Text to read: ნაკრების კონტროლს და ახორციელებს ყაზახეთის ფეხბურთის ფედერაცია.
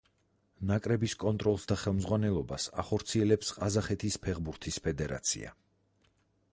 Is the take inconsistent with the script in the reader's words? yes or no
yes